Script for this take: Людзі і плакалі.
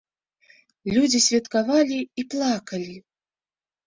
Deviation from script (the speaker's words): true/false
true